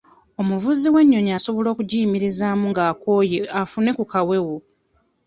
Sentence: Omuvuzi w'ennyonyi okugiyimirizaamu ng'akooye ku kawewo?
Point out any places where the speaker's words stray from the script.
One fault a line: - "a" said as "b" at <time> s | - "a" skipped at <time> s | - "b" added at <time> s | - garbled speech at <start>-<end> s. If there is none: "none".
- "asobola" added at 1.4 s
- "afune" added at 3.6 s